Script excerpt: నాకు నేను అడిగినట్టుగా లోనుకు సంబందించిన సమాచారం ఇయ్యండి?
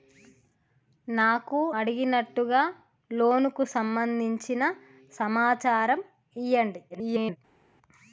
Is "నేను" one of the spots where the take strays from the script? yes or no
yes